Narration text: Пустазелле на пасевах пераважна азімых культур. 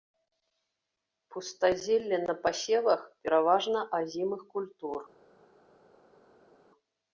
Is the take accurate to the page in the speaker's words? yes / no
yes